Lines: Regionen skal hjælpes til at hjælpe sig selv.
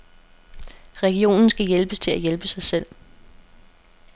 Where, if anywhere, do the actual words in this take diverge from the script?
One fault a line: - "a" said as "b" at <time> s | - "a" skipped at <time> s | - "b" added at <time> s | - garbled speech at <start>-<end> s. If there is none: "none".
none